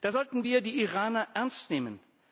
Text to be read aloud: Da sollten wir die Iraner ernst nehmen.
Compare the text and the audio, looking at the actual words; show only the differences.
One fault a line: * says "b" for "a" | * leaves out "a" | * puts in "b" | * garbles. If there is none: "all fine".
all fine